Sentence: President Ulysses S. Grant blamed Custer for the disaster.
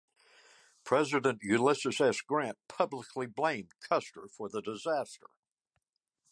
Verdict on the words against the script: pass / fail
fail